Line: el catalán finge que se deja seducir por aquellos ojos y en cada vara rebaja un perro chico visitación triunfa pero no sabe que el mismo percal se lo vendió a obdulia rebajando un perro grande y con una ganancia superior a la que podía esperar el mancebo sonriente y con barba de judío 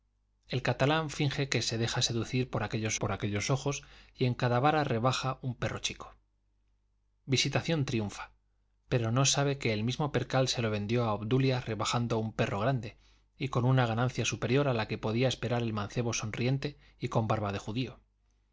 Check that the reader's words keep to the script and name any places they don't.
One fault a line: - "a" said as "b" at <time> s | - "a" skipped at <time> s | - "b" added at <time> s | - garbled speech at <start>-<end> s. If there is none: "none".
- "por aquellos" added at 3.0 s